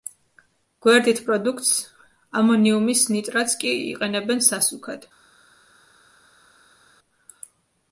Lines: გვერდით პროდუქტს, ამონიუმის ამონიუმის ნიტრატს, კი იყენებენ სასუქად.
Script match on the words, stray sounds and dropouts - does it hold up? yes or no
no